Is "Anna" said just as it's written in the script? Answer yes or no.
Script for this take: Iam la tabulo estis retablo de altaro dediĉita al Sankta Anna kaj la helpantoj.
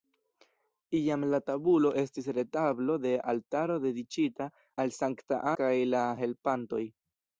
no